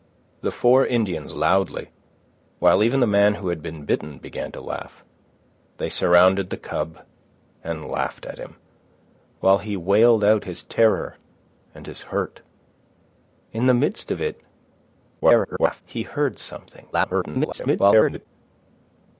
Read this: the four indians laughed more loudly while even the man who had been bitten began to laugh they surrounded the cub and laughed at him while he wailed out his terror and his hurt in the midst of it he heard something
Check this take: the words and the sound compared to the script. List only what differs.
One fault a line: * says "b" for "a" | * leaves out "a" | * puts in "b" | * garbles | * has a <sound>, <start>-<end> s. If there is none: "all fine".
* leaves out "laughed more"
* garbles
* garbles